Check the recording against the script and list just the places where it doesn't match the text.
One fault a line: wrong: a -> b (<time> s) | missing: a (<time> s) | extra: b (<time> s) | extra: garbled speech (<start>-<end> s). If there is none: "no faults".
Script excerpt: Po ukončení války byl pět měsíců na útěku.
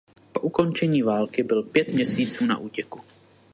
no faults